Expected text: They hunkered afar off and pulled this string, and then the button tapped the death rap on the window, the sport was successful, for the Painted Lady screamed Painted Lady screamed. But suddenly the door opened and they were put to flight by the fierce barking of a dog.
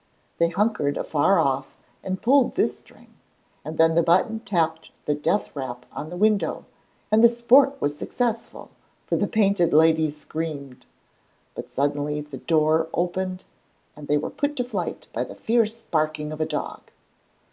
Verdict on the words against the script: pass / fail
fail